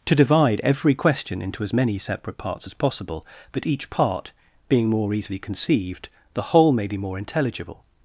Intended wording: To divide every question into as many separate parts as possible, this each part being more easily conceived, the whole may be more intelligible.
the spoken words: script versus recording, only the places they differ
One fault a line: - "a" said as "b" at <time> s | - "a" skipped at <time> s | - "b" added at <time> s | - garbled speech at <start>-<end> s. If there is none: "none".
- "this" said as "that" at 3.5 s